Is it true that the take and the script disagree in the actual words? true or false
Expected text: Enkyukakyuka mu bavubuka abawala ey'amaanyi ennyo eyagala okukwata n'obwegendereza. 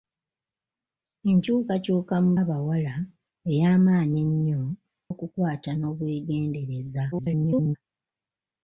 true